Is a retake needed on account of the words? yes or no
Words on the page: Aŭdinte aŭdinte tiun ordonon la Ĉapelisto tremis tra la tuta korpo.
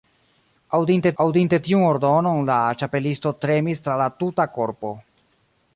no